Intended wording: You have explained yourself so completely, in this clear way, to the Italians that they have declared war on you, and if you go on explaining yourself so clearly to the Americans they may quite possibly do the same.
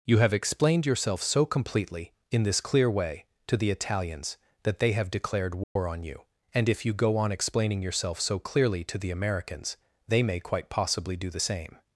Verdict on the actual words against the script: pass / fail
pass